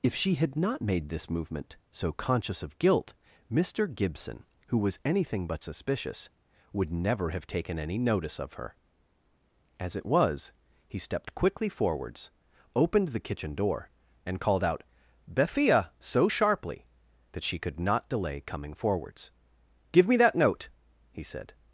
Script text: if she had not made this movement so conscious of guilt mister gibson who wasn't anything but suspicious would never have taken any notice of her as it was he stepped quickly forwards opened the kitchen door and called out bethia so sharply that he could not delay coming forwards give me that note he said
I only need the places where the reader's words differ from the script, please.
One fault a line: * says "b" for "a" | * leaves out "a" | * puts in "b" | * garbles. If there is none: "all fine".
* says "was" for "wasn't"
* says "she" for "he"